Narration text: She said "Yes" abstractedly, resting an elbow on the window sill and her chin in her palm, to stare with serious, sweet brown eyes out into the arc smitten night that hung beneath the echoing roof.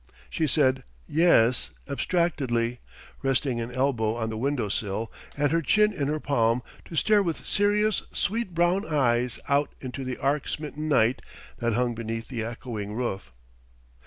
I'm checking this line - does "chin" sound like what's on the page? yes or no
yes